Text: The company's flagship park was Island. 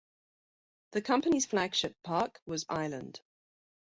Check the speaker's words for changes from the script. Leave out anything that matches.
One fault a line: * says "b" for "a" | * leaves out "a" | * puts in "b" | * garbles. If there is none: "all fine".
all fine